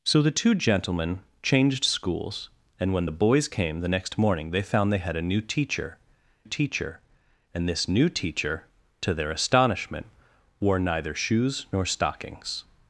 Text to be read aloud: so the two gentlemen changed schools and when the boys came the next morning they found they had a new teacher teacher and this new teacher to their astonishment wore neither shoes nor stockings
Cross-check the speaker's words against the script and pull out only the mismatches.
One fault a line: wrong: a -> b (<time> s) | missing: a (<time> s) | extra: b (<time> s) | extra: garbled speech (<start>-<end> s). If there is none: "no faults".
no faults